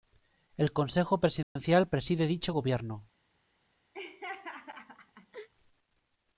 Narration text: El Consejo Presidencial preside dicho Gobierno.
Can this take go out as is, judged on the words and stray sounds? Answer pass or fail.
fail